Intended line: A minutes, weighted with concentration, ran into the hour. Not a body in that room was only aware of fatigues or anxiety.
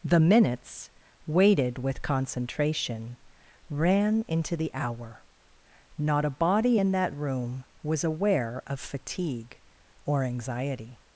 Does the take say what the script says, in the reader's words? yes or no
no